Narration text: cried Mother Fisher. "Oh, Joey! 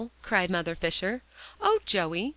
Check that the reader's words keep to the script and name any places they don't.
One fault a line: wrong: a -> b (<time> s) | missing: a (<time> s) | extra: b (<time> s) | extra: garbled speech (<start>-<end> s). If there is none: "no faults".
no faults